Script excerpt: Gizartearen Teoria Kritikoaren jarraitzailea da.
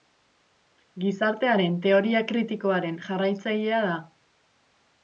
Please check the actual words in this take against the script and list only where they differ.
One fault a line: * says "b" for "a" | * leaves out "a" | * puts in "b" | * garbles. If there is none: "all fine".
all fine